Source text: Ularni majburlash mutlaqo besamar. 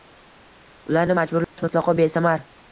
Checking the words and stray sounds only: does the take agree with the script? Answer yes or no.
no